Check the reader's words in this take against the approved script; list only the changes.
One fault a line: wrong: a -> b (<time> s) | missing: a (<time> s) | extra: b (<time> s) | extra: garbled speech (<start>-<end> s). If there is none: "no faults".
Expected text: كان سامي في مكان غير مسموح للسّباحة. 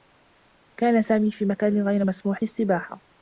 no faults